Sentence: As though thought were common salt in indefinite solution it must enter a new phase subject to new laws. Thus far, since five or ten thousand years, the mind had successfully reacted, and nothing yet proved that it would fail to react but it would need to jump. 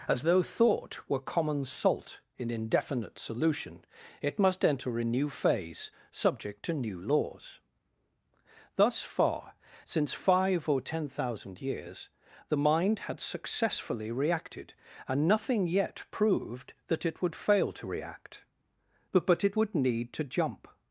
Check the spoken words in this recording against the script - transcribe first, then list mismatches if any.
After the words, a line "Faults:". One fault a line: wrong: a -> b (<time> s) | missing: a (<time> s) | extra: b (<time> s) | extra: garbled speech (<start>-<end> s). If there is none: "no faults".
As though thought were common salt in indefinite solution it must enter a new phase subject to new laws. Thus far, since five or ten thousand years, the mind had successfully reacted, and nothing yet proved that it would fail to react but but it would need to jump.
Faults:
extra: but (19.2 s)